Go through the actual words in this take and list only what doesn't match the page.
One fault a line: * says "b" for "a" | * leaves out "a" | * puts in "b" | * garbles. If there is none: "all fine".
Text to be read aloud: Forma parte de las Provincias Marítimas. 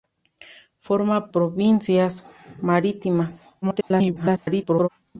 * leaves out "parte de las"
* garbles